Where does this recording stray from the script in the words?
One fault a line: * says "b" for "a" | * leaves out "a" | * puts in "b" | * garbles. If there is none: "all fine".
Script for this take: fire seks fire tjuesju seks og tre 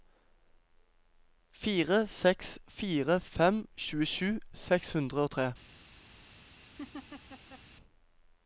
* puts in "fem"
* puts in "hundre"